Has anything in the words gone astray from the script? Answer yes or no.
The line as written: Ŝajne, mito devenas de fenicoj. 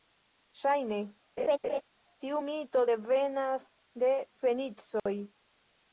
yes